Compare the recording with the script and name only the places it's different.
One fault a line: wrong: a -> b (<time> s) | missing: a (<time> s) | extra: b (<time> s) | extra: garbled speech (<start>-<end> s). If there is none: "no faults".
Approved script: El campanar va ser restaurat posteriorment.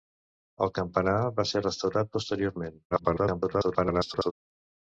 extra: garbled speech (2.9-4.3 s)